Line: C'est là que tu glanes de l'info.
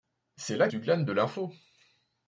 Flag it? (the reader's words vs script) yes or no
yes